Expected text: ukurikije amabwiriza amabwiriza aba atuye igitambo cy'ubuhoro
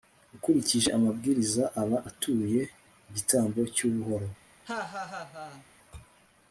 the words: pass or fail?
fail